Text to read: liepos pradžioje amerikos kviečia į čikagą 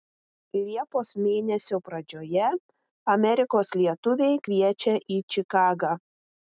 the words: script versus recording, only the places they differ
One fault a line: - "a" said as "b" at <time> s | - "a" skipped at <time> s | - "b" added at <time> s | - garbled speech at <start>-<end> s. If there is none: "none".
- "mėnesio" added at 1.2 s
- "lietuviai" added at 3.8 s